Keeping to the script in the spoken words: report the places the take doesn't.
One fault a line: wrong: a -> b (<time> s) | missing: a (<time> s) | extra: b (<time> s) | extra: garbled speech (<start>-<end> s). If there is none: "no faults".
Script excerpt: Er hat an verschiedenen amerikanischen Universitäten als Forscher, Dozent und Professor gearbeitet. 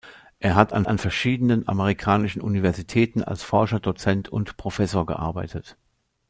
extra: an (0.9 s)